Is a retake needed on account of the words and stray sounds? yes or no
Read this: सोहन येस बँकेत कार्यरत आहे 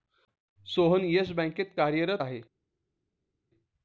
no